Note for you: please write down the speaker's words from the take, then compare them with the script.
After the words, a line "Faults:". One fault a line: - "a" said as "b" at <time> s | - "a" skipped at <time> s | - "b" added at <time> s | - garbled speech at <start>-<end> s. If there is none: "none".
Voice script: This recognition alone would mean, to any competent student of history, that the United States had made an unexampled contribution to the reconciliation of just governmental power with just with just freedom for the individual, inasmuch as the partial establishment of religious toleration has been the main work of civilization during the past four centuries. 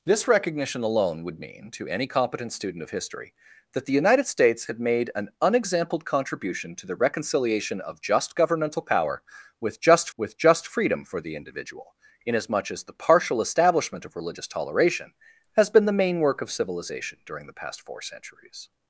This recognition alone would mean, to any competent student of history, that the United States had made an unexampled contribution to the reconciliation of just governmental power with just with just freedom for the individual, inasmuch as the partial establishment of religious toleration has been the main work of civilization during the past four centuries.
Faults:
none